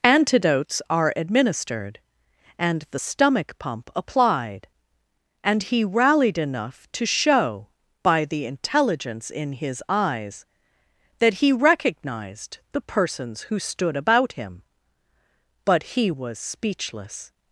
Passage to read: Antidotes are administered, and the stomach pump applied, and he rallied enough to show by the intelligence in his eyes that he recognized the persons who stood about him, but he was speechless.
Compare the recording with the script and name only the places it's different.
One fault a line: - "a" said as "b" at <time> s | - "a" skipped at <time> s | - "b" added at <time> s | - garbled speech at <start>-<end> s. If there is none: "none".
none